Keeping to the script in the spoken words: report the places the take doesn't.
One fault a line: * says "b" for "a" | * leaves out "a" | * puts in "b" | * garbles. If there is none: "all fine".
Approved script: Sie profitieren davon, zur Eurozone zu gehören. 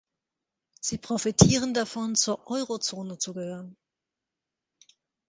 all fine